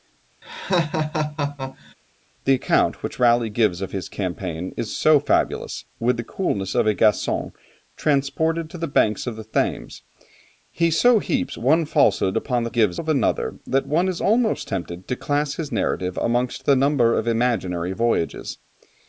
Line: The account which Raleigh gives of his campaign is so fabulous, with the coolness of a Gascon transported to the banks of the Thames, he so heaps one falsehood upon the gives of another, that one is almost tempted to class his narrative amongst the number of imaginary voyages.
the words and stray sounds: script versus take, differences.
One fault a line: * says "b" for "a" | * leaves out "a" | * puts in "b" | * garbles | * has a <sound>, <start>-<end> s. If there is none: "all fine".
* has a laugh, 0.4-1.9 s